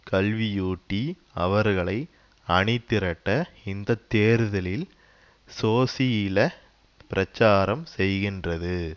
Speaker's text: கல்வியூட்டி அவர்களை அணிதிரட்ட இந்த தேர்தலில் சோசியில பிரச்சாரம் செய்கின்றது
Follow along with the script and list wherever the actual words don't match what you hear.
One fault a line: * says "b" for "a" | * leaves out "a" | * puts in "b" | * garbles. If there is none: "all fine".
all fine